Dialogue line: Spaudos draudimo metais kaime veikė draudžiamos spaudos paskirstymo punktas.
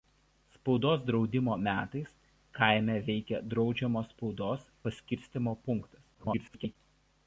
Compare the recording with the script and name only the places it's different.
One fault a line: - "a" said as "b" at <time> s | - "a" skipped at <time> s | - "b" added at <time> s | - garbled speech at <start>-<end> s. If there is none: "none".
- garbled speech at 6.1-6.8 s